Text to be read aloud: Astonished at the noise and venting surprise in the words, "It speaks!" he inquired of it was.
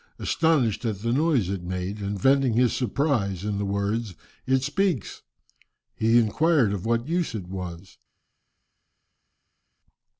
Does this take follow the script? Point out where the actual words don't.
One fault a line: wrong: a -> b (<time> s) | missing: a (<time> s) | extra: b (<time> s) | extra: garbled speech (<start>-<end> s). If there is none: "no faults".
extra: it made (1.5 s)
extra: his (2.5 s)
extra: what use (6.9 s)